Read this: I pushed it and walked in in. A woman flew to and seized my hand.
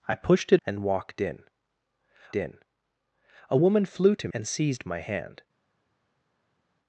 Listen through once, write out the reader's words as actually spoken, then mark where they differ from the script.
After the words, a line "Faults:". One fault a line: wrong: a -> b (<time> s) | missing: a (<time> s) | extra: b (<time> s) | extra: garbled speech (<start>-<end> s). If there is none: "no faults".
I pushed it and walked in in. A woman flew to and seized my hand.
Faults:
no faults